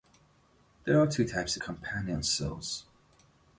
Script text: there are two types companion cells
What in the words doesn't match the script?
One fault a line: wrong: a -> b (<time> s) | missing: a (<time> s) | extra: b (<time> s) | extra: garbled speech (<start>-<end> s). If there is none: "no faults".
no faults